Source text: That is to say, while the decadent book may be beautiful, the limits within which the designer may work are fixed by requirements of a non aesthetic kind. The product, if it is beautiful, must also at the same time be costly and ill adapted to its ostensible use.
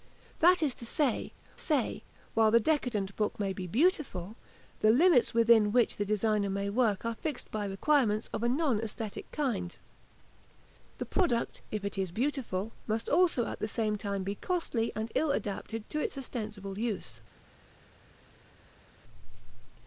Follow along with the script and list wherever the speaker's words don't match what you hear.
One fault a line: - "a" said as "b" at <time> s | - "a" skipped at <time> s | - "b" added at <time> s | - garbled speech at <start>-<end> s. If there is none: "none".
- "say" added at 1.6 s